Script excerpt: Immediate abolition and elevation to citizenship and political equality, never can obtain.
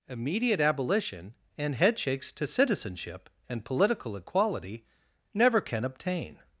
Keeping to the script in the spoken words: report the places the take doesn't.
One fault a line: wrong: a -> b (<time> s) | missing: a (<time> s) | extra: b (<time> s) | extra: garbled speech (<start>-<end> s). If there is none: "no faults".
wrong: elevation -> headshakes (1.8 s)